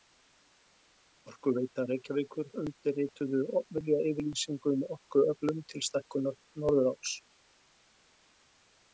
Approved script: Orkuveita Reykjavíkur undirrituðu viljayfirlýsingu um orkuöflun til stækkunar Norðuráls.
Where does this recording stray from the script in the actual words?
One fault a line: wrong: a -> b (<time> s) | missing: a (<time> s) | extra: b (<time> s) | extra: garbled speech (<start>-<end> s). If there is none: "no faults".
no faults